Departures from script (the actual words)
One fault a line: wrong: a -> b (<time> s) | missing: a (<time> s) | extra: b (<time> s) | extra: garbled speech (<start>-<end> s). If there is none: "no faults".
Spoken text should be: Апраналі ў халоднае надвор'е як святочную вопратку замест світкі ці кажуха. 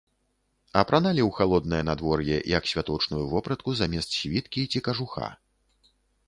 no faults